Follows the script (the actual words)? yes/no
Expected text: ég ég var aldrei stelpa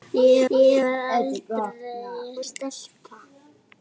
yes